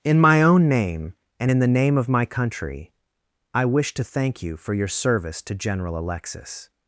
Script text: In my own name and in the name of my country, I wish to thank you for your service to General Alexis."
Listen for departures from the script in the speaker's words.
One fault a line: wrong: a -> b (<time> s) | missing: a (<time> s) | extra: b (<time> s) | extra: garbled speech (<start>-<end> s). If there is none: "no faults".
no faults